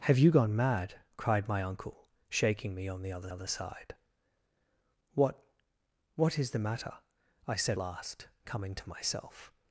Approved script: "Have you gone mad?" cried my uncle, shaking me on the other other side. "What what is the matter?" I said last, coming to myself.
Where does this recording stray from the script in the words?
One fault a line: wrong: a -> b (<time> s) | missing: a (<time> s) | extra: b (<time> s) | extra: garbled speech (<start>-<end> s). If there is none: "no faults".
no faults